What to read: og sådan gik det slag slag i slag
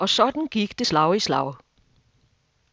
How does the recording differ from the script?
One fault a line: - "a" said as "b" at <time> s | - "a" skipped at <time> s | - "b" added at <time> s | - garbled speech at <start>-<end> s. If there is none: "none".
- "slag" skipped at 1.2 s